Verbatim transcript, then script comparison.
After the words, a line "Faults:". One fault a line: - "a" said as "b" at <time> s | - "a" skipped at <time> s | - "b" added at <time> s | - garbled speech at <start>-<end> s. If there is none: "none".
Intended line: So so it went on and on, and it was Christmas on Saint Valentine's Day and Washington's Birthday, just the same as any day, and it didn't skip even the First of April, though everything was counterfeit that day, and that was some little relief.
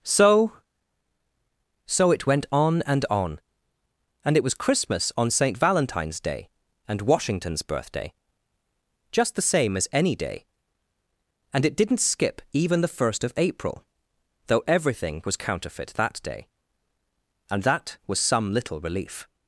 So so it went on and on, and it was Christmas on Saint Valentine's Day and Washington's Birthday, just the same as any day, and it didn't skip even the First of April, though everything was counterfeit that day, and that was some little relief.
Faults:
none